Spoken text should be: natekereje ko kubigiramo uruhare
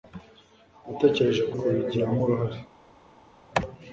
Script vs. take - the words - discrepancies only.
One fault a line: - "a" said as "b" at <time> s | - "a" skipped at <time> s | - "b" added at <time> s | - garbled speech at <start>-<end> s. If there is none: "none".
none